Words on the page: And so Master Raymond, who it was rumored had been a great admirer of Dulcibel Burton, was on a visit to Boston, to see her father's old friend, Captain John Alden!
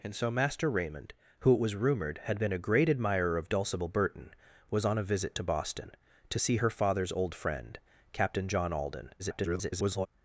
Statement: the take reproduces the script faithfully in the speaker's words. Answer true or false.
false